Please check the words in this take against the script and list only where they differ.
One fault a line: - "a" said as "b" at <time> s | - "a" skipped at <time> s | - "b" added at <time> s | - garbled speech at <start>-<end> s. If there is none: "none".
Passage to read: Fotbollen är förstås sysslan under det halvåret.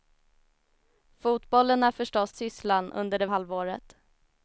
none